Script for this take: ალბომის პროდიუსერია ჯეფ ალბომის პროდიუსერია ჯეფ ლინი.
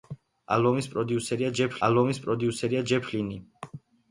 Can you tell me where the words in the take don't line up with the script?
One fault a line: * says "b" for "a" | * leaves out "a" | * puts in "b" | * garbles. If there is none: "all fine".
all fine